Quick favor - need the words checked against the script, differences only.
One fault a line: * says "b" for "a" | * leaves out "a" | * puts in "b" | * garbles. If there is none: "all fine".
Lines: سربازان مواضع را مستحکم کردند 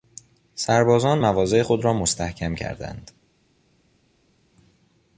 * puts in "خود"